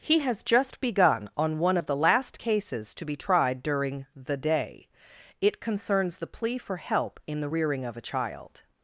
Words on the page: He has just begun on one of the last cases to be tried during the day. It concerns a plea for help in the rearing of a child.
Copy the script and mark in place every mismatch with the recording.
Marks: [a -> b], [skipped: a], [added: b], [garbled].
He has just begun on one of the last cases to be tried during the day. It concerns [a -> the] plea for help in the rearing of a child.